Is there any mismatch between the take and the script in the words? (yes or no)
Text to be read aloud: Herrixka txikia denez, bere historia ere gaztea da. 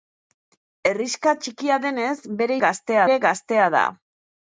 yes